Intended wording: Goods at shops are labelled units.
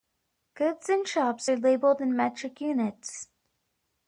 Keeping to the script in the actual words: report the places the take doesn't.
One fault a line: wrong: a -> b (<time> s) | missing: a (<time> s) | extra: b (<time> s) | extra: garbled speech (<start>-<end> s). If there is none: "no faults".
wrong: at -> in (0.9 s)
extra: in metric (2.0 s)